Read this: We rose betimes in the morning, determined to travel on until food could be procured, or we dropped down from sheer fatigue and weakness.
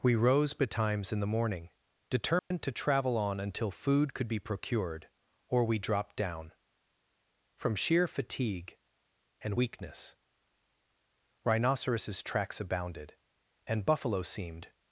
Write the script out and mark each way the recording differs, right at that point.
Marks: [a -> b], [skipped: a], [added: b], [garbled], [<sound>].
We rose betimes in the morning, determined [dropout] to travel on until food could be procured, or we dropped down from sheer fatigue and weakness. [added: Rhinoceros tracks abounded and buffalo seemed]